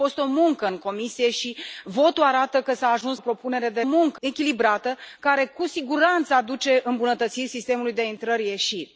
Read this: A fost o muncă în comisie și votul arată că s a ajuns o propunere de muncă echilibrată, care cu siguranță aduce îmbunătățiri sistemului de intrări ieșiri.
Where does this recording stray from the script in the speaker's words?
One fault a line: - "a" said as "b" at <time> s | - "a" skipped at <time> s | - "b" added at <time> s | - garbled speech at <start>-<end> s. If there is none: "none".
none